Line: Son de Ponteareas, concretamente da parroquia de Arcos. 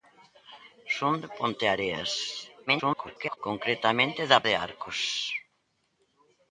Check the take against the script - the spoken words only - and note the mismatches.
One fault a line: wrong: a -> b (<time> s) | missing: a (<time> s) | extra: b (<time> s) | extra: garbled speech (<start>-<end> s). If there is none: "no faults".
extra: garbled speech (2.7-3.4 s)
missing: parroquia (4.4 s)